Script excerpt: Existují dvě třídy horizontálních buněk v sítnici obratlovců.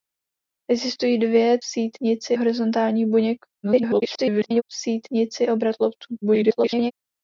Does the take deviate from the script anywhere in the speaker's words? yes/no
yes